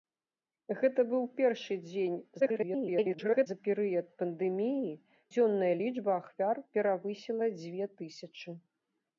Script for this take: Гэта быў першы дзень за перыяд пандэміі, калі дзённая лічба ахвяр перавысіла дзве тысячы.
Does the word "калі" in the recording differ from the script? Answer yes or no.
yes